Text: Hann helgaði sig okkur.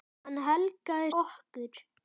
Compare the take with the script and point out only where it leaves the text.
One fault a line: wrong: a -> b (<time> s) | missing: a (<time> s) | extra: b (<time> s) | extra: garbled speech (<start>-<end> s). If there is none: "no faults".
missing: sig (1.1 s)